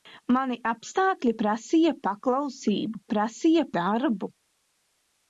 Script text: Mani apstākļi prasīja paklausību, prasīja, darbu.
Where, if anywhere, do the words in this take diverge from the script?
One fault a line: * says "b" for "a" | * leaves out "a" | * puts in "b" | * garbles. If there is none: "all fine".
all fine